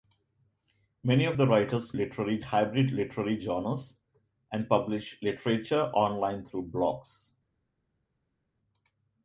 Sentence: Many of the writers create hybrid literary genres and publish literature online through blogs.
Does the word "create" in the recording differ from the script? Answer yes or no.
yes